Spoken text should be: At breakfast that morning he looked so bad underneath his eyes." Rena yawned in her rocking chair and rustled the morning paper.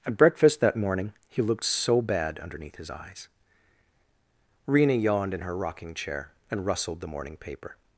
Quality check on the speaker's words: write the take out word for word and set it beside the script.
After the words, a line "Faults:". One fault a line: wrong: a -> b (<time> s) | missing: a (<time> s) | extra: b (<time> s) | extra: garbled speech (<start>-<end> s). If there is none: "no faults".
At breakfast that morning he looked so bad underneath his eyes." Rena yawned in her rocking chair and rustled the morning paper.
Faults:
no faults